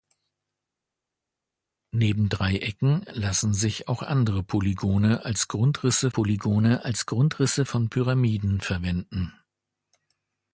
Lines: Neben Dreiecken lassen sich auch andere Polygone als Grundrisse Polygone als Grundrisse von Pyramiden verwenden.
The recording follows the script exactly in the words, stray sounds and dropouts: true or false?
true